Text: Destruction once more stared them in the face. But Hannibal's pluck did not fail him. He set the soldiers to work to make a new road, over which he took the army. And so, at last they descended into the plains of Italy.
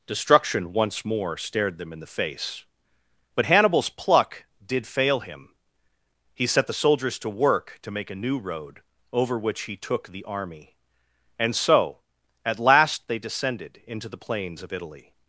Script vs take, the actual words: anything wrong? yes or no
yes